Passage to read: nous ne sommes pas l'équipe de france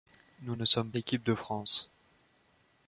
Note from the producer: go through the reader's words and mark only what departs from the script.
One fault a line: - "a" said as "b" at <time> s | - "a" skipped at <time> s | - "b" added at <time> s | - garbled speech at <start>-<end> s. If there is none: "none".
- "pas" skipped at 0.9 s